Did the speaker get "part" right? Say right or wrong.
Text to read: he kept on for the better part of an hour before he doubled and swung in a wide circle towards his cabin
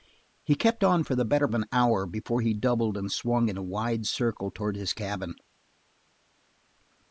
wrong